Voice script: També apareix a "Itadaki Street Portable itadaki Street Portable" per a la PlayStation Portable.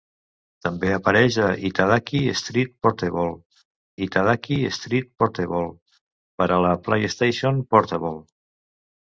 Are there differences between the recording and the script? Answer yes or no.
no